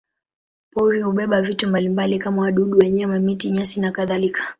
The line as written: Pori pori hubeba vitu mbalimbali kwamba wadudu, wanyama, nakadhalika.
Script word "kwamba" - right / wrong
wrong